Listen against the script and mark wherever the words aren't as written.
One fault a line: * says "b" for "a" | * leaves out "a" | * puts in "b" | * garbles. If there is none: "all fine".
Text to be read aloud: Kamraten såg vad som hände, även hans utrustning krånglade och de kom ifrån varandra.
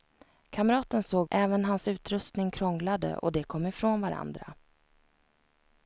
* leaves out "vad som hände"